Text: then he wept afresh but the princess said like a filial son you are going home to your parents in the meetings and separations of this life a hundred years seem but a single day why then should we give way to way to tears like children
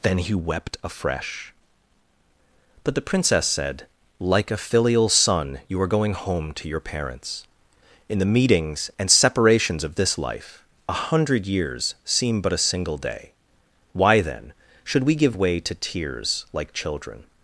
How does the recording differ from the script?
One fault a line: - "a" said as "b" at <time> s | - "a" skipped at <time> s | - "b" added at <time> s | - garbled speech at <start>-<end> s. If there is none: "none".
- "way to" skipped at 15.7 s